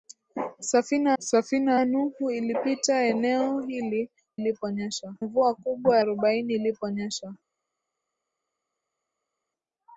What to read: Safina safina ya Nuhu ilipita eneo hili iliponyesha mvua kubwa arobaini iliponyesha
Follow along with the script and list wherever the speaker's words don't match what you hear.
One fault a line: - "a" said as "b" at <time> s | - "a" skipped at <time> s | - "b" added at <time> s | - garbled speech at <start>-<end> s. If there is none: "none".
none